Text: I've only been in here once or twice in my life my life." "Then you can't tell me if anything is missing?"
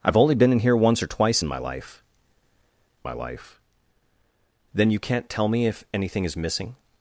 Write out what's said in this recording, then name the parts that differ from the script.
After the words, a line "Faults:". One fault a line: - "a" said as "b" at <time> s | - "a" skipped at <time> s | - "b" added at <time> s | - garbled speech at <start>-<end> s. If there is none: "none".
I've only been in here once or twice in my life my life." "Then you can't tell me if anything is missing?"
Faults:
none